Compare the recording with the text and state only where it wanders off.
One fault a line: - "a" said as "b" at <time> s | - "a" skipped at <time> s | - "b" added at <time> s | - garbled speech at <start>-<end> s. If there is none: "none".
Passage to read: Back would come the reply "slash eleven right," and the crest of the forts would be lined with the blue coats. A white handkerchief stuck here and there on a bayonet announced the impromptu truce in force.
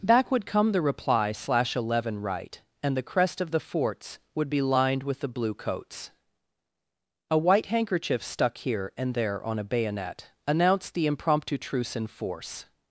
none